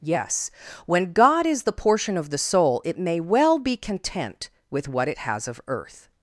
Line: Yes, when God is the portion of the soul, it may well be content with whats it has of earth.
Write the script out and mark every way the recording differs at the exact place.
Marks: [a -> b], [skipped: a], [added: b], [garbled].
Yes, when God is the portion of the soul, it may well be content with [whats -> what] it has of earth.